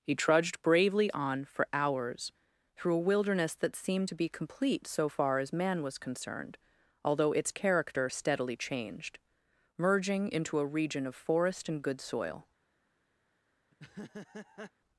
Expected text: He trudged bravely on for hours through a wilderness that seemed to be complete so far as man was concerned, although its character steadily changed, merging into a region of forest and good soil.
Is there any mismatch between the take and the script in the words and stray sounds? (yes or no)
yes